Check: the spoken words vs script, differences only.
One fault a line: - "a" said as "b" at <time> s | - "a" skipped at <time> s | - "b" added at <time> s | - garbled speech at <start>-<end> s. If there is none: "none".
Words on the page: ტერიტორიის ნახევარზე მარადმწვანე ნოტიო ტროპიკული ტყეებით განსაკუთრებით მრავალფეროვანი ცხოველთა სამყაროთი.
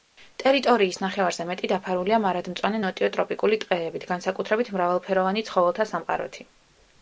- "მეტი დაფარულია" added at 1.5 s